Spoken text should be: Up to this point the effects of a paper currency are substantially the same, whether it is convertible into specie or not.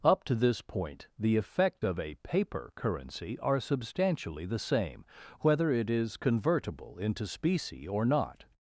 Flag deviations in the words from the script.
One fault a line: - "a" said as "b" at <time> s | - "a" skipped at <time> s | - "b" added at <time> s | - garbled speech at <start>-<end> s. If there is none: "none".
- "effects" said as "effect" at 1.4 s